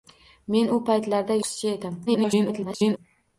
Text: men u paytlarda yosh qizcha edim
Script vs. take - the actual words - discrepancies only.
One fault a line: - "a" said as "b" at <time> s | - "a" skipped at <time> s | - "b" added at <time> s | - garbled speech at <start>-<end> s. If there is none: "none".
- "yosh" skipped at 1.4 s
- garbled speech at 2.1-3.0 s